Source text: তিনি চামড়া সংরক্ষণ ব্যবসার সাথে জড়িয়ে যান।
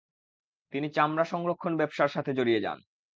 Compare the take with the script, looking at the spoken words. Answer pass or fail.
pass